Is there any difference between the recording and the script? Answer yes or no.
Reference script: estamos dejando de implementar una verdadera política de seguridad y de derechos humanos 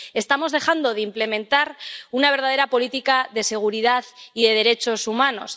no